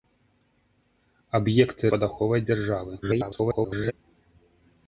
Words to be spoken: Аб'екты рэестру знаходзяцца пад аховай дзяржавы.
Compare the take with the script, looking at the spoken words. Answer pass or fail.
fail